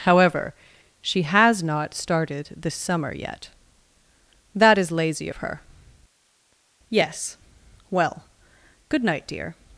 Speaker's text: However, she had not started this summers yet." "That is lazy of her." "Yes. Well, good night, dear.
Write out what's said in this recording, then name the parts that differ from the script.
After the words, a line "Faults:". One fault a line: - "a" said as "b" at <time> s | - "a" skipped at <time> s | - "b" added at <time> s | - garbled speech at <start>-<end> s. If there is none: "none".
However, she has not started this summer yet." "That is lazy of her." "Yes. Well, good night, dear.
Faults:
- "had" said as "has" at 1.2 s
- "summers" said as "summer" at 2.7 s